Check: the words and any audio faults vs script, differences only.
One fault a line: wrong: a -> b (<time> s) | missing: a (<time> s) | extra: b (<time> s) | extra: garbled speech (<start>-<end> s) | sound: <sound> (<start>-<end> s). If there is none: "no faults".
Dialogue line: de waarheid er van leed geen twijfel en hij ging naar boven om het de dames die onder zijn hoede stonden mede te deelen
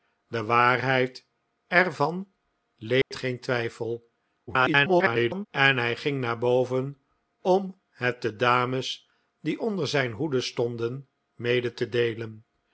sound: dropout (3.0-3.1 s)
extra: garbled speech (4.5-5.5 s)